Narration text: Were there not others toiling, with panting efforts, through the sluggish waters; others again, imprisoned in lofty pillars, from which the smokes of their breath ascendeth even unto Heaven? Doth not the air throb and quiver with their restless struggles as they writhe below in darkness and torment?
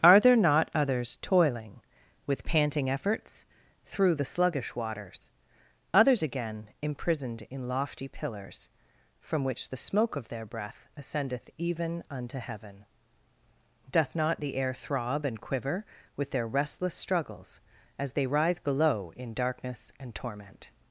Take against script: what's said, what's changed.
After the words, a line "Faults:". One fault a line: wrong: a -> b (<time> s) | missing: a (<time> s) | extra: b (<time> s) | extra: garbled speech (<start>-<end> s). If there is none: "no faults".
Are there not others toiling, with panting efforts, through the sluggish waters; others again, imprisoned in lofty pillars, from which the smoke of their breath ascendeth even unto Heaven? Doth not the air throb and quiver with their restless struggles as they writhe below in darkness and torment?
Faults:
wrong: Were -> Are (0.0 s)
wrong: smokes -> smoke (9.8 s)